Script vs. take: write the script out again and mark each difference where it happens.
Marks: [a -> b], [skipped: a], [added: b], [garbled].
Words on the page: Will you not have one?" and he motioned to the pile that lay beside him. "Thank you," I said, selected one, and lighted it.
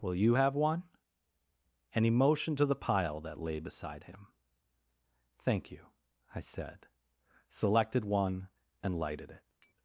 Will you [skipped: not] have one?" and he motioned to the pile that lay beside him. "Thank you," I said, selected one, and lighted it.